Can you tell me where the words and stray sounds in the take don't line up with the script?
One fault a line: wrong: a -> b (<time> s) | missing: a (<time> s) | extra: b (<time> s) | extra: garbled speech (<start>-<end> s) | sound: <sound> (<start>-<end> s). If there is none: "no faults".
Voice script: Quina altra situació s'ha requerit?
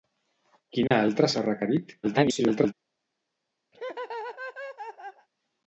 sound: dropout (0.9-0.9 s)
missing: situació (1.3 s)
extra: garbled speech (2.0-2.7 s)
sound: laugh (3.7-5.3 s)